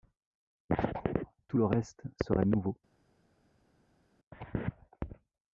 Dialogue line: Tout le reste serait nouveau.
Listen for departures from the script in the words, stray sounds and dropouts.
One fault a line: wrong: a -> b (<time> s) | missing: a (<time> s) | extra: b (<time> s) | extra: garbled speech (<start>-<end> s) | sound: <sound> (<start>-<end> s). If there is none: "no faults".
no faults